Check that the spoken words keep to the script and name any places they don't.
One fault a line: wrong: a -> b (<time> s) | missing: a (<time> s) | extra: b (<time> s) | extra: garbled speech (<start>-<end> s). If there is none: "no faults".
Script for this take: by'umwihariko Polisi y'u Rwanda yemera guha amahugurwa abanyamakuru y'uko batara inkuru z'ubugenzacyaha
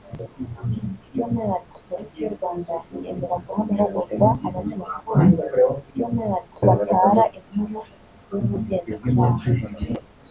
wrong: y'uko -> by'umwihariko (5.9 s)